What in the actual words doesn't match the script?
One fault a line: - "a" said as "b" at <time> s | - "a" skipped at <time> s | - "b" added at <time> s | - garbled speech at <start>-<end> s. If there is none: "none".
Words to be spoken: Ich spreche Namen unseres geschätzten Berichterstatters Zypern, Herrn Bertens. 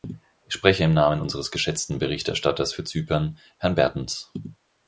- "im" added at 0.8 s
- "für" added at 2.7 s